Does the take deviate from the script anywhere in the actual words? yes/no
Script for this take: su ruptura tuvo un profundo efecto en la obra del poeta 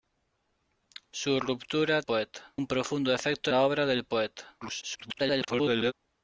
yes